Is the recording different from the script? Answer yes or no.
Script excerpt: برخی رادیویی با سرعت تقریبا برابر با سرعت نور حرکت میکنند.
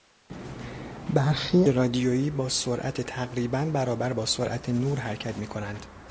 no